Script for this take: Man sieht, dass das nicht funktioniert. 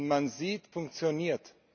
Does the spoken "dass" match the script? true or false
false